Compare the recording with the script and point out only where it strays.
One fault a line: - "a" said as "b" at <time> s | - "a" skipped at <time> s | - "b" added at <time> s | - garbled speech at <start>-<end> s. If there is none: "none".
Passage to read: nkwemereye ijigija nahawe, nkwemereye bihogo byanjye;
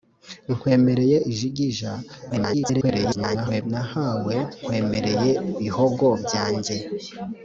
- garbled speech at 2.3-3.6 s